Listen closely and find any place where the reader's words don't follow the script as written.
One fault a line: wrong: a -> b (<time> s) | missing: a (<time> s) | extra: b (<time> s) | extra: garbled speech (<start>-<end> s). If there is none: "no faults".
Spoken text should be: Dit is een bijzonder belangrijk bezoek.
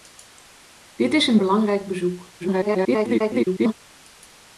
missing: bijzonder (1.4 s)
extra: garbled speech (2.4-3.7 s)